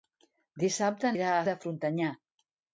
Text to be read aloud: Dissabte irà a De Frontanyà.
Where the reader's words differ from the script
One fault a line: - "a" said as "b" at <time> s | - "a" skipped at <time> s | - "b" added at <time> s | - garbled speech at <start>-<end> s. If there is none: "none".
none